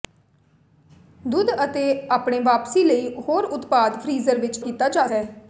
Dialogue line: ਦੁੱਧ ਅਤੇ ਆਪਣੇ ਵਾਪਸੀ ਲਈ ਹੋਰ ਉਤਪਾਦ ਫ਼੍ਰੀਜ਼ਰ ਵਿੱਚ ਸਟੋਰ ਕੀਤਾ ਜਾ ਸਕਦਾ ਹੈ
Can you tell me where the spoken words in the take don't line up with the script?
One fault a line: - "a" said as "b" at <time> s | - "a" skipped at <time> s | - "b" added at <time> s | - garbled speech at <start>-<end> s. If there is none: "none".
- "ਸਟੋਰ" skipped at 4.6 s
- "ਸਕਦਾ" skipped at 5.1 s